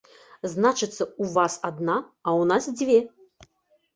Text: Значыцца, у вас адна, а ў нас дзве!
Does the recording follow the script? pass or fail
pass